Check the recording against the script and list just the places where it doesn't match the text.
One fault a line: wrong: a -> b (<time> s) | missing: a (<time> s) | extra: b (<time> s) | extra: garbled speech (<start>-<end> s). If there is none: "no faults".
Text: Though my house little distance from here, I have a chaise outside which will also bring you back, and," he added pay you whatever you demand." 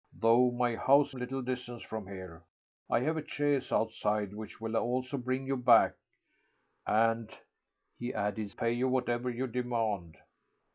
no faults